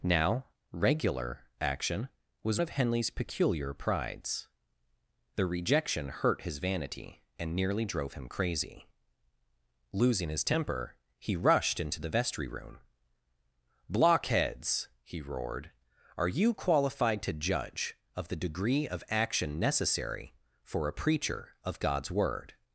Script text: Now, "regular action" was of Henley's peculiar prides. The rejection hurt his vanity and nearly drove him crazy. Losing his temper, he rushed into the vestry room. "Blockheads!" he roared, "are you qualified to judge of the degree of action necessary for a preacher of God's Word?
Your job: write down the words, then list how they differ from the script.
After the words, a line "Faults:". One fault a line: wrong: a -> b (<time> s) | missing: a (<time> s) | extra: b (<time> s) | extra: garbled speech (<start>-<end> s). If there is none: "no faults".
Now, "regular action" was of Henley's peculiar prides. The rejection hurt his vanity and nearly drove him crazy. Losing his temper, he rushed into the vestry room. "Blockheads!" he roared, "are you qualified to judge of the degree of action necessary for a preacher of God's Word?
Faults:
no faults